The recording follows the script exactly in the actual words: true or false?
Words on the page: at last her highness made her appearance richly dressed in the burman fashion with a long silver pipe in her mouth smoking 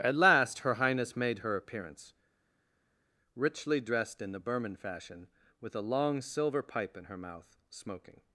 true